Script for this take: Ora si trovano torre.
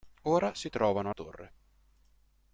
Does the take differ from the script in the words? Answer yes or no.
no